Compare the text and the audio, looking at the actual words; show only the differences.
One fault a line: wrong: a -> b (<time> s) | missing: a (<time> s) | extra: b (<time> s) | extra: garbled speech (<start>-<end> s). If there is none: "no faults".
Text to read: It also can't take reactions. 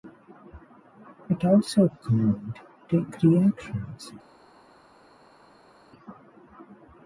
no faults